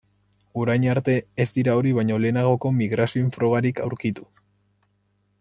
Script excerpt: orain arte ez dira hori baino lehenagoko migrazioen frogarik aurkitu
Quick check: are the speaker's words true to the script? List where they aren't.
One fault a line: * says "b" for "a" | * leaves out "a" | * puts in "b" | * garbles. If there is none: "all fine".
all fine